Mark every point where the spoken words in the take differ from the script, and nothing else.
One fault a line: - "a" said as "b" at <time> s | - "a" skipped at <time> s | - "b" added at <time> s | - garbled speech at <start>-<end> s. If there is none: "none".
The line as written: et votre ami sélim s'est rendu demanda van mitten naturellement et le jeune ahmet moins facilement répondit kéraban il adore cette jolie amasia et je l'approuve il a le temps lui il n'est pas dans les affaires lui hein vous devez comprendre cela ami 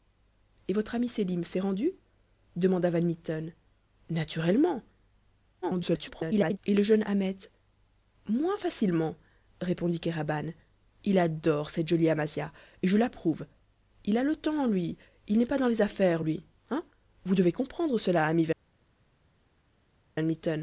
- garbled speech at 5.6-6.6 s